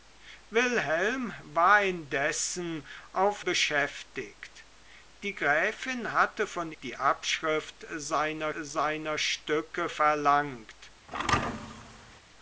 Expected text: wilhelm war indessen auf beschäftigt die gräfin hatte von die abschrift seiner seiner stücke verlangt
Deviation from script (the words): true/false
false